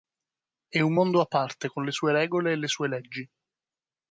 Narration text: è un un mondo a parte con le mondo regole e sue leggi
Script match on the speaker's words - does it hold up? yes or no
no